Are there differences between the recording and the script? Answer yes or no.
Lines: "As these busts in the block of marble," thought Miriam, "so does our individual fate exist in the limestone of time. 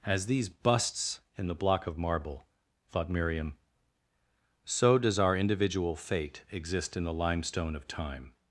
no